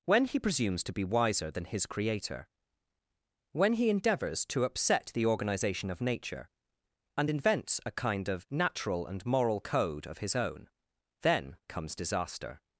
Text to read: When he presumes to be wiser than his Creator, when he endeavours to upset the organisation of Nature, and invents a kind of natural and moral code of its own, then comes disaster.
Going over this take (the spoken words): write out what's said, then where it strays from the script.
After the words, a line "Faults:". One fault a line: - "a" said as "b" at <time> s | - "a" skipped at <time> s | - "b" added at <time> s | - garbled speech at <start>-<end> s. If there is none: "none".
When he presumes to be wiser than his Creator, when he endeavours to upset the organisation of Nature, and invents a kind of natural and moral code of his own, then comes disaster.
Faults:
- "its" said as "his" at 10.2 s